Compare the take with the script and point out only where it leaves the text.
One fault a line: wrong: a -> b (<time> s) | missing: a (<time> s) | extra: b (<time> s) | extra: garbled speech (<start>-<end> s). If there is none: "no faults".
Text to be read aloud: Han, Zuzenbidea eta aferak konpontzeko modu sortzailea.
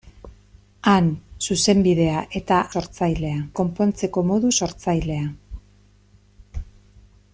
wrong: aferak -> sortzailea (2.7 s)